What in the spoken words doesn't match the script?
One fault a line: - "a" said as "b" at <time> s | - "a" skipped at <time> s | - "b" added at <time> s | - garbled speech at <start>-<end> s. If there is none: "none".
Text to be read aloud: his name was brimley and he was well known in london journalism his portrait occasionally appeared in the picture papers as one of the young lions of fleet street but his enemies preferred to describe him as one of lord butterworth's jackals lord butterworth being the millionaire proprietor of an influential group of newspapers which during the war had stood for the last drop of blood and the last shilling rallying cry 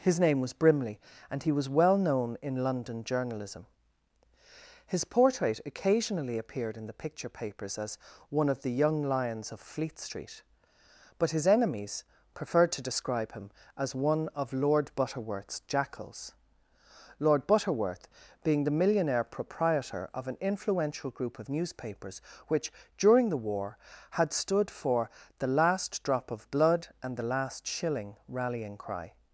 none